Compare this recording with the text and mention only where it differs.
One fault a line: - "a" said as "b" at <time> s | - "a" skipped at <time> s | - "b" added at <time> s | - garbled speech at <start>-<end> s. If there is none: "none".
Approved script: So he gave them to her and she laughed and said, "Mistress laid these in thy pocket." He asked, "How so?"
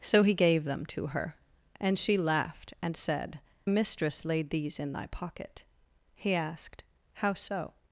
none